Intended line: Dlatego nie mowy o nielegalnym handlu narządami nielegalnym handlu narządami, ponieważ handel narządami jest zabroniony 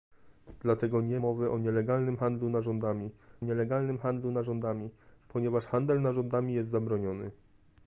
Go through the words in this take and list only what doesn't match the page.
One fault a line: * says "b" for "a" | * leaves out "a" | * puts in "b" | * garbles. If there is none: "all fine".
all fine